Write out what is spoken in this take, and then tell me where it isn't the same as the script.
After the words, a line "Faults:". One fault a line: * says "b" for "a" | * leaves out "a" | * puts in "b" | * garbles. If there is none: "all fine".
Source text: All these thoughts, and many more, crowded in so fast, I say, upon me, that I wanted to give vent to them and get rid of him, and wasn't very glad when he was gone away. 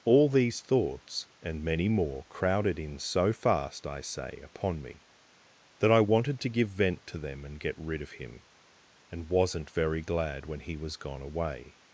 All these thoughts, and many more, crowded in so fast, I say, upon me, that I wanted to give vent to them and get rid of him, and wasn't very glad when he was gone away.
Faults:
all fine